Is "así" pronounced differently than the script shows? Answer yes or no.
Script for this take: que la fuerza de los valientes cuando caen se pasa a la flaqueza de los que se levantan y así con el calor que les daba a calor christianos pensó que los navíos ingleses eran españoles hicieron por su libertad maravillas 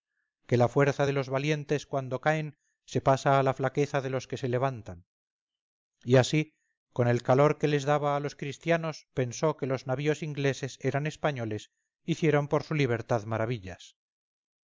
no